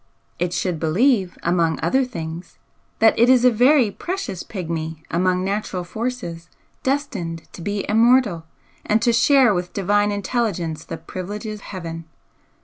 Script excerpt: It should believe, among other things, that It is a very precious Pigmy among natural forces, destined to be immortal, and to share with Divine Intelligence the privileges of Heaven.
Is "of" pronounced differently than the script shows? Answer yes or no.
yes